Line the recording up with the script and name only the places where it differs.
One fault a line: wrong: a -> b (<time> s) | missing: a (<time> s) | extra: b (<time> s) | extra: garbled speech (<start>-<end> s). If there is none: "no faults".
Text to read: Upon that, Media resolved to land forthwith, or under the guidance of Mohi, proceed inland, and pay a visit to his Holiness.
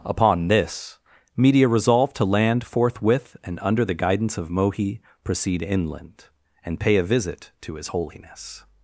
wrong: that -> this (0.5 s)
wrong: or -> and (3.4 s)